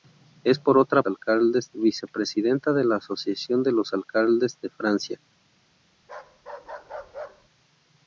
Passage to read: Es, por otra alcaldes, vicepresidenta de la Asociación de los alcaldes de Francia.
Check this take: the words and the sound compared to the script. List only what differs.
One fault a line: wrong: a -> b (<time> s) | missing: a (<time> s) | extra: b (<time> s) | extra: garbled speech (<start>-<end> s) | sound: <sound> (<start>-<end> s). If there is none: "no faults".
sound: bark (6.0-7.5 s)